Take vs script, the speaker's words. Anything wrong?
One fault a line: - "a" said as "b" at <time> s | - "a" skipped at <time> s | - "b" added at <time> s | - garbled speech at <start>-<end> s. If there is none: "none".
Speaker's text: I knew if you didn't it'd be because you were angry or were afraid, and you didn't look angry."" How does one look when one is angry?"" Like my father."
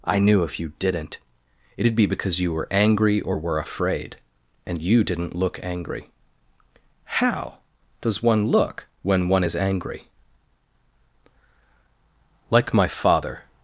none